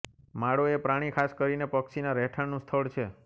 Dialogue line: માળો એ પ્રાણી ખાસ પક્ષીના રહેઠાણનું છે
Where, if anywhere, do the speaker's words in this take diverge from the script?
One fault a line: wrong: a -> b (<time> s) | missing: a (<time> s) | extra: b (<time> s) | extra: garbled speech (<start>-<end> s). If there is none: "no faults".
extra: કરીને (1.3 s)
extra: સ્થળ (2.6 s)